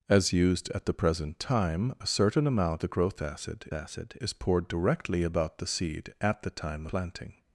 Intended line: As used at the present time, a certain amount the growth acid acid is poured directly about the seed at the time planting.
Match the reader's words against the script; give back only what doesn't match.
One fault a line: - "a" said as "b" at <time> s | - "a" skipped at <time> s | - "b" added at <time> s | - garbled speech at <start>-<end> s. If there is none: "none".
none